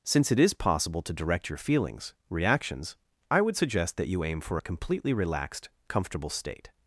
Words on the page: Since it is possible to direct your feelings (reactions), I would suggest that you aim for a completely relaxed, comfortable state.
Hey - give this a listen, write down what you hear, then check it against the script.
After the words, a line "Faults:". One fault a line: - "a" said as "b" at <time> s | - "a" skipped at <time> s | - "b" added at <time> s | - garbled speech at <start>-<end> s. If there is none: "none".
Since it is possible to direct your feelings (reactions), I would suggest that you aim for a completely relaxed, comfortable state.
Faults:
none